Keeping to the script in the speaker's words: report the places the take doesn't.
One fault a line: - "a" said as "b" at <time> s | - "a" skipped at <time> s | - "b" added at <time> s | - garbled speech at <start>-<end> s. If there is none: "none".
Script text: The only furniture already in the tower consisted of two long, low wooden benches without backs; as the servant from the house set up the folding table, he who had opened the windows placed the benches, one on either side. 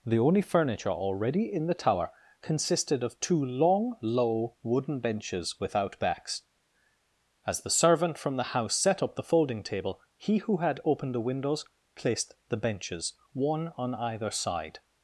none